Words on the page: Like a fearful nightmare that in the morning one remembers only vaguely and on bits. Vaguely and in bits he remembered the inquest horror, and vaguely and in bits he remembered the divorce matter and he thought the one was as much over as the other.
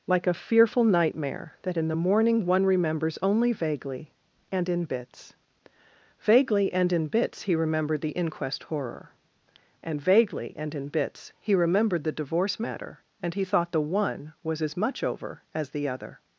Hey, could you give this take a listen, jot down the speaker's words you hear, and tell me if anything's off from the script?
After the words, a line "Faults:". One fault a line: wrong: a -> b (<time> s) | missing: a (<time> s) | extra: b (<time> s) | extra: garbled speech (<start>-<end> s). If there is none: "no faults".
Like a fearful nightmare that in the morning one remembers only vaguely and in bits. Vaguely and in bits he remembered the inquest horror, and vaguely and in bits he remembered the divorce matter and he thought the one was as much over as the other.
Faults:
wrong: on -> in (4.7 s)